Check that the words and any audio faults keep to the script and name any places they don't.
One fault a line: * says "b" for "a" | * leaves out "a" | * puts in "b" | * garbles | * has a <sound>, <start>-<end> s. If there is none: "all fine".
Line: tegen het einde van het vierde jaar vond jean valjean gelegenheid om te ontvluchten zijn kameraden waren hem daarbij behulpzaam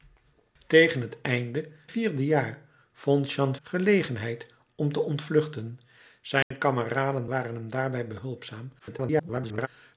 * leaves out "van het"
* leaves out "valjean"
* has a dropout, 6.4-6.5 s
* garbles